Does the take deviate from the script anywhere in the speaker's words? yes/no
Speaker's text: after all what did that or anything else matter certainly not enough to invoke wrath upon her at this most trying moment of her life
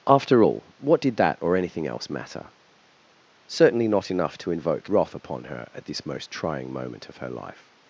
no